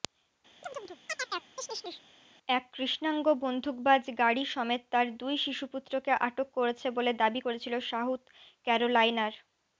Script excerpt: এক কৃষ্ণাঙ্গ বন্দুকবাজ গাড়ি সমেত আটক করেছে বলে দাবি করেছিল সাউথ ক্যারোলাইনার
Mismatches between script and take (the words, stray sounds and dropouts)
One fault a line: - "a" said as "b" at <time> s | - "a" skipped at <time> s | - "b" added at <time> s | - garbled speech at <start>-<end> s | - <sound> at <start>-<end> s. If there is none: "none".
- chirp at 0.6-2.0 s
- "তার দুই শিশুপুত্রকে" added at 4.9 s